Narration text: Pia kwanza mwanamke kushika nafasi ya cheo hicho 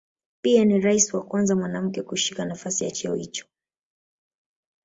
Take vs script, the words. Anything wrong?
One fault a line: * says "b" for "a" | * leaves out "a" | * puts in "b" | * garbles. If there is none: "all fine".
* puts in "ni rais wa"